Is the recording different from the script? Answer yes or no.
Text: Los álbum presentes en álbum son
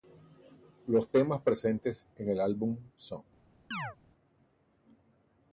yes